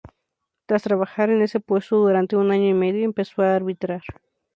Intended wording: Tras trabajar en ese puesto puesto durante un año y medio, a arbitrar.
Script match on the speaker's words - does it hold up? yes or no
no